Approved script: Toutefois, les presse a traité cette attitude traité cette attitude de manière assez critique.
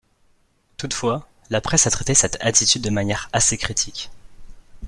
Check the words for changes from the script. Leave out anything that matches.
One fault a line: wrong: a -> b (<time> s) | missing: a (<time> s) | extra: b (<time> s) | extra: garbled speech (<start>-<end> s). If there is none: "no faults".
wrong: les -> la (1.5 s)
missing: traité cette attitude (2.8 s)